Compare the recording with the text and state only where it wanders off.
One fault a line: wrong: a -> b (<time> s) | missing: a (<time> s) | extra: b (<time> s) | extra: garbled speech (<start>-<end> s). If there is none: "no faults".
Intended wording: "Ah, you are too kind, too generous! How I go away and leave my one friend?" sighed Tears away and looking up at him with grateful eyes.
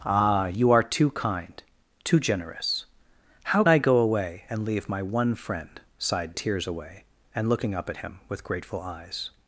no faults